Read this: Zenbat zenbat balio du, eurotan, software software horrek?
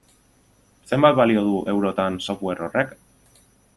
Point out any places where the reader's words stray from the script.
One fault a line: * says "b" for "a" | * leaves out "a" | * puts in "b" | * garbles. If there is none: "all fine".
* leaves out "zenbat"
* leaves out "software"